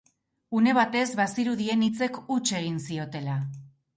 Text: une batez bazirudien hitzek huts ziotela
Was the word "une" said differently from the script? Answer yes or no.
no